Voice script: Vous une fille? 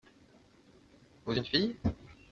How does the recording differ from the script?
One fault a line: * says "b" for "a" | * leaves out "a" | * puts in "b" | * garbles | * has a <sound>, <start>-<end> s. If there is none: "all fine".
all fine